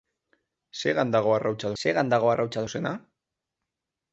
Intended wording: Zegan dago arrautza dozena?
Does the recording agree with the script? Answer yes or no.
no